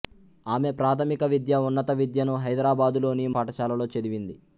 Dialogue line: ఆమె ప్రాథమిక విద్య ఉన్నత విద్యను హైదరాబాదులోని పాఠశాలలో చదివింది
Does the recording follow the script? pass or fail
pass